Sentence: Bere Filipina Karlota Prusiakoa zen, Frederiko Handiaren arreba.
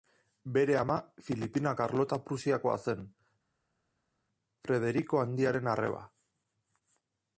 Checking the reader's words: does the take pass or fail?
fail